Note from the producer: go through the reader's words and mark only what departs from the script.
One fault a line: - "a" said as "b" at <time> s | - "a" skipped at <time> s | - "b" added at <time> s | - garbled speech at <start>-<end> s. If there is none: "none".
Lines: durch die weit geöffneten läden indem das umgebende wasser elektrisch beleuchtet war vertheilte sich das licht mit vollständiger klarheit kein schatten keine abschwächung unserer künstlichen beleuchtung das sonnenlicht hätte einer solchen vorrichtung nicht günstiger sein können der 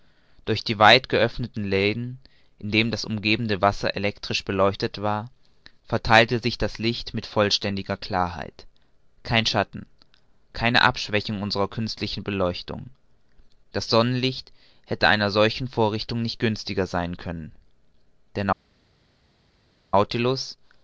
none